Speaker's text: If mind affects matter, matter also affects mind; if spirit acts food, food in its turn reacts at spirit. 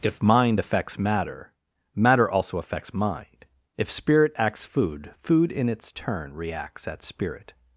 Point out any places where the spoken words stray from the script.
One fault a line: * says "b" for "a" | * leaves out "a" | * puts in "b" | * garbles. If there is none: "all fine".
all fine